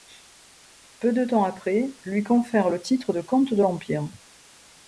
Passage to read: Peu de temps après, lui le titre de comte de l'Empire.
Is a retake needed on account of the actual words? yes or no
yes